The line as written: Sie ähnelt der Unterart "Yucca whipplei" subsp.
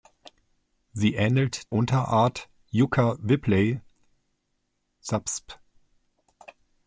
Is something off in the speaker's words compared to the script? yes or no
yes